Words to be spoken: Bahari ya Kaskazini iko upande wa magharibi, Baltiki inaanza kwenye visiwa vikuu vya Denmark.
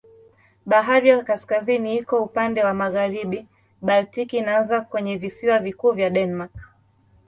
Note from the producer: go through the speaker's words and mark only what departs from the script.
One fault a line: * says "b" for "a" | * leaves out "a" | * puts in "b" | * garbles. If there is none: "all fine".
all fine